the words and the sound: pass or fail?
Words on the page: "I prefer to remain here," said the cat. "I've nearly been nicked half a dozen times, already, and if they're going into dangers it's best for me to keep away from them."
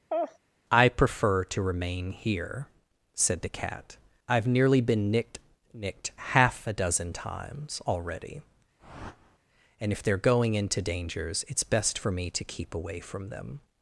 fail